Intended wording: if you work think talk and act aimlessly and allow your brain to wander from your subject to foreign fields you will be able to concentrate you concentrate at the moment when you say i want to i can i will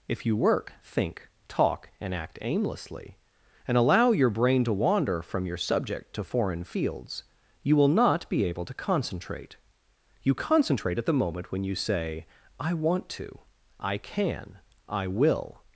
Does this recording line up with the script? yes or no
no